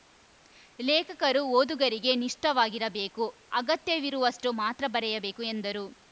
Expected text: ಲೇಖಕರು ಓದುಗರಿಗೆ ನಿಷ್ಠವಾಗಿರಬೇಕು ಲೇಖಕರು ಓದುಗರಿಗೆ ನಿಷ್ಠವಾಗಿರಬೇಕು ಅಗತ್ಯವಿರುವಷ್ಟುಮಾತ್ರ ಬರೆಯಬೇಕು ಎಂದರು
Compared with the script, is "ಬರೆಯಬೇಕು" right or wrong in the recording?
right